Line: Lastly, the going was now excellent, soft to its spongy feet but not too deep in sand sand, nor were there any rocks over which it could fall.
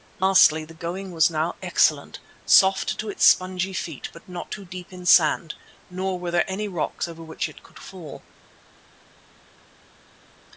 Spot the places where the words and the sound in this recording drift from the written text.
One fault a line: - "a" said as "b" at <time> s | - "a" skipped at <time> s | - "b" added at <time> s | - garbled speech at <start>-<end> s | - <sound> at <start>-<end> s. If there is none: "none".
- "sand" skipped at 5.5 s